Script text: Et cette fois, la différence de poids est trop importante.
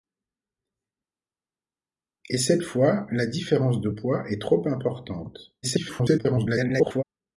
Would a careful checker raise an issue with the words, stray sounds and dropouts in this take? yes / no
yes